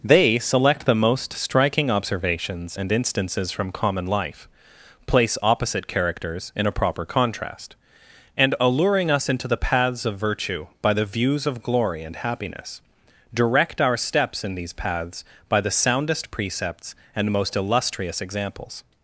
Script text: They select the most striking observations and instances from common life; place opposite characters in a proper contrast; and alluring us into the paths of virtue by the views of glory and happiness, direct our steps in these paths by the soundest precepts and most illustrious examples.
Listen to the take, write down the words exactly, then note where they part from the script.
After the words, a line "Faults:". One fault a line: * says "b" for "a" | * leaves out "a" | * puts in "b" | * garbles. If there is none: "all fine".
They select the most striking observations and instances from common life; place opposite characters in a proper contrast; and alluring us into the paths of virtue by the views of glory and happiness, direct our steps in these paths by the soundest precepts and most illustrious examples.
Faults:
all fine